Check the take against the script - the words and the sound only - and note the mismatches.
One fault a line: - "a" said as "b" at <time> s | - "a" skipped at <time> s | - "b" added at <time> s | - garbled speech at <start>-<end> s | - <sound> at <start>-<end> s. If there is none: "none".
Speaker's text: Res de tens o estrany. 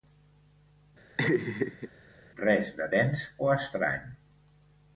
- laugh at 1.2-1.9 s